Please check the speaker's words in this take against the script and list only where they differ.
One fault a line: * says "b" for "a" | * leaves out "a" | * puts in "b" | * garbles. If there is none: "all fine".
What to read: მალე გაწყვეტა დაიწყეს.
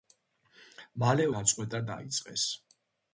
all fine